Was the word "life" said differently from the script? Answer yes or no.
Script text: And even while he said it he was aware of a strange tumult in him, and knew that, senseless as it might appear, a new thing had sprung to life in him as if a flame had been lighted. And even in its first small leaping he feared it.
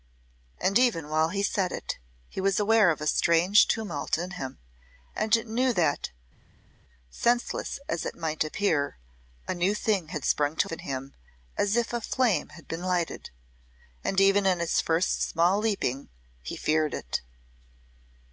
yes